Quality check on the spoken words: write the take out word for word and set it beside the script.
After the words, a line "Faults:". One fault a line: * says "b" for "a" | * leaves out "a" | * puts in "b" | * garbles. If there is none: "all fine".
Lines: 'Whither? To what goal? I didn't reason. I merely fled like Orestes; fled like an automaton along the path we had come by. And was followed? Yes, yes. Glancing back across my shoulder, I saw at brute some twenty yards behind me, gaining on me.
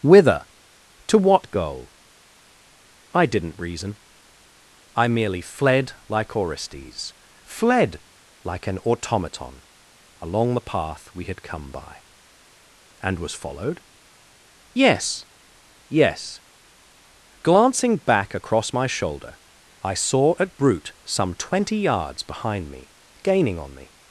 'Whither? To what goal? I didn't reason. I merely fled like Orestes; fled like an automaton along the path we had come by. And was followed? Yes, yes. Glancing back across my shoulder, I saw at brute some twenty yards behind me, gaining on me.
Faults:
all fine